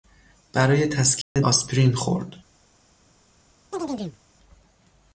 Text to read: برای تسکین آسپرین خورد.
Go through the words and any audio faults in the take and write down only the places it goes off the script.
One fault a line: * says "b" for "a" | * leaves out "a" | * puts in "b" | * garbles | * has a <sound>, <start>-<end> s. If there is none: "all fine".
* has a dropout, 1.2-1.4 s
* has a chirp, 3.7-4.2 s